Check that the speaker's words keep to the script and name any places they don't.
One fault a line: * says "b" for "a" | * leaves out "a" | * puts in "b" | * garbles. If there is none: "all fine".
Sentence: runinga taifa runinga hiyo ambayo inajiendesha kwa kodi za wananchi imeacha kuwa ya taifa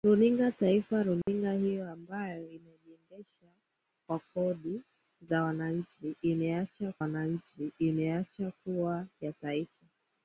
* puts in "wananchi imeacha"